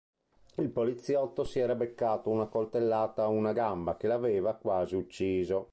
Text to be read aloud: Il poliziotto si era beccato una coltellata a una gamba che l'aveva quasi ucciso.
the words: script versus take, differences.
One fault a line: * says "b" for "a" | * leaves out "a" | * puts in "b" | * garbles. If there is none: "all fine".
all fine